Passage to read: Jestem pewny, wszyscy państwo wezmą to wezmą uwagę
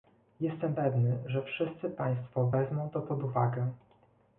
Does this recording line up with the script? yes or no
no